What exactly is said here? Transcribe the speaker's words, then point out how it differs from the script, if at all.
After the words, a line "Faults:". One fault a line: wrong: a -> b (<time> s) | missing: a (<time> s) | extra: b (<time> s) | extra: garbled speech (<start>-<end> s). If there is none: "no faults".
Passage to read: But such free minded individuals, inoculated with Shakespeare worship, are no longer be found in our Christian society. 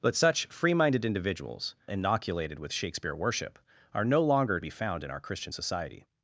But such free minded individuals, inoculated with Shakespeare worship, are no longer be found in our Christian society.
Faults:
no faults